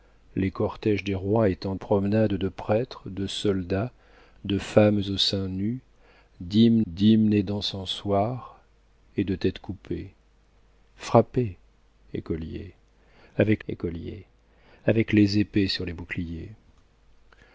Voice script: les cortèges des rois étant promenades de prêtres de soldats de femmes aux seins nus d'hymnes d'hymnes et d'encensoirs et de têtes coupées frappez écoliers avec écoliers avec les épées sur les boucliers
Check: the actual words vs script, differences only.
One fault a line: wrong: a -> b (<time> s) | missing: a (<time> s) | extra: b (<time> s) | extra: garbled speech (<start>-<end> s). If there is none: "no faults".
no faults